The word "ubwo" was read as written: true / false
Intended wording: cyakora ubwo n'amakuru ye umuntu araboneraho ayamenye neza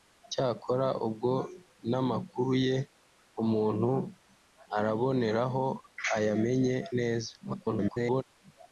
true